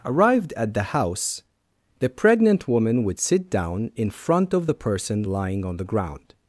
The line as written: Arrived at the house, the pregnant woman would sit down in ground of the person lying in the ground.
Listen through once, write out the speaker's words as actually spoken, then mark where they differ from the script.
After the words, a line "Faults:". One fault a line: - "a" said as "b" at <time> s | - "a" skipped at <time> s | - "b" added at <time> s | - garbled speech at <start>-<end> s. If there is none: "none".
Arrived at the house, the pregnant woman would sit down in front of the person lying on the ground.
Faults:
- "ground" said as "front" at 4.1 s
- "in" said as "on" at 5.6 s